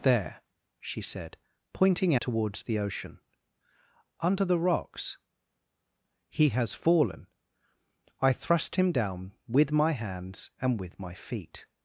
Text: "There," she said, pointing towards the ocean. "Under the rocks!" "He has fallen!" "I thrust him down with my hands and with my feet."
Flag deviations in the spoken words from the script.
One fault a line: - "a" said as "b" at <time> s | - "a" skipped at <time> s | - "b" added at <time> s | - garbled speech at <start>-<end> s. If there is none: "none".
none